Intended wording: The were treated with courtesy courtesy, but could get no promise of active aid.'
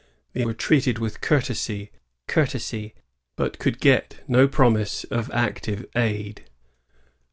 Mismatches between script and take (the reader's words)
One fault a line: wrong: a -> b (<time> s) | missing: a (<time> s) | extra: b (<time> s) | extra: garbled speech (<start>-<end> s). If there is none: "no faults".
no faults